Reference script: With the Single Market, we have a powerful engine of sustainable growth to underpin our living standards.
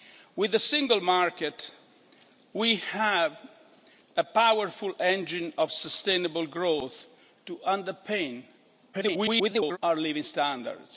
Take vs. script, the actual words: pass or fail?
fail